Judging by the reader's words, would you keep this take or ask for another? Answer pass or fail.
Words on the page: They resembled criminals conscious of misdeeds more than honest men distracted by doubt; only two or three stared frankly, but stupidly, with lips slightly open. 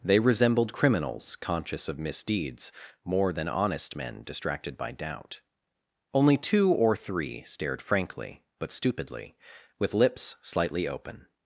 pass